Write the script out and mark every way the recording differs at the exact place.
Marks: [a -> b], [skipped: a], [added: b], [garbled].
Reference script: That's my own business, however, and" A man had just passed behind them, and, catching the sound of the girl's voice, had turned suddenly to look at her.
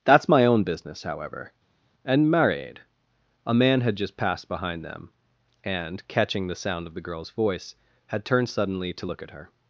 That's my own business, however, and" [added: married] A man had just passed behind them, and, catching the sound of the girl's voice, had turned suddenly to look at her.